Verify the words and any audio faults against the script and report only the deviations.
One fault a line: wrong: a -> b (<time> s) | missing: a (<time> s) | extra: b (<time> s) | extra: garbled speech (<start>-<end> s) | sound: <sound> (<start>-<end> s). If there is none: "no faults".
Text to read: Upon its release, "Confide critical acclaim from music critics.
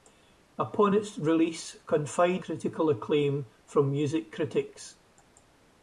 no faults